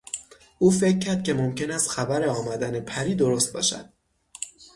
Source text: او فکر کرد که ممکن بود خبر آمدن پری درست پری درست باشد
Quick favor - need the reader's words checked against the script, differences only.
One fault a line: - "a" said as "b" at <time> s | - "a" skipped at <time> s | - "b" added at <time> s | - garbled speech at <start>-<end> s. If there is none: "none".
- "بود" said as "است" at 1.7 s
- "پری درست" skipped at 3.5 s